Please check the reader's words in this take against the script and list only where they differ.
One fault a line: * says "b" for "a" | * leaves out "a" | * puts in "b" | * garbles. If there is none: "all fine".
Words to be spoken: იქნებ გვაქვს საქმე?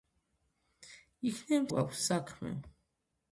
all fine